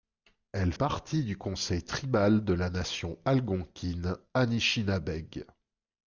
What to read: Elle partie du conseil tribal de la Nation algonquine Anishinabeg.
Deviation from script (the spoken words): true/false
false